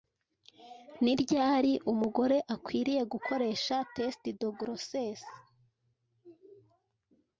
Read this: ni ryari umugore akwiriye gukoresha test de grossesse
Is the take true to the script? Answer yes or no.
yes